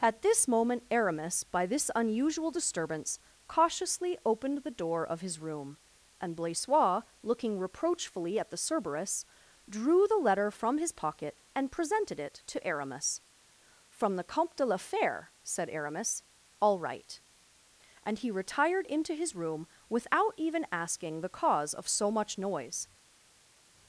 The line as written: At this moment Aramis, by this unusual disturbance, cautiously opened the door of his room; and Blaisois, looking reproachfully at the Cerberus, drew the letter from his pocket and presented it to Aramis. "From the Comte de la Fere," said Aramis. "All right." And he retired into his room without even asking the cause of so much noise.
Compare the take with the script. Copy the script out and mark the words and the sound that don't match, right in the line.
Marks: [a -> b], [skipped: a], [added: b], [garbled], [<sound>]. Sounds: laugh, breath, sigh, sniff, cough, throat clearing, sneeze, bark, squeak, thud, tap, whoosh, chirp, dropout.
At this moment Aramis, by this unusual disturbance, cautiously opened the door of his room; and Blaisois, looking reproachfully at the Cerberus, drew the letter from his pocket and presented it to Aramis. "From the Comte de la Fere," said Aramis. "All right." And he retired into his room without even asking the cause of so much noise.